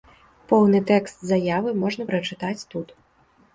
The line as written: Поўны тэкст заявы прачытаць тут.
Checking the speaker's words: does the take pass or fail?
fail